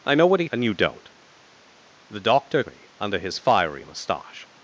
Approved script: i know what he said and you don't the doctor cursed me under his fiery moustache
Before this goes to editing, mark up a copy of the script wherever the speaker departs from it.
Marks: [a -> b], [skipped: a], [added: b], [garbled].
i know what he [skipped: said] and you don't the doctor [skipped: cursed] me under his fiery moustache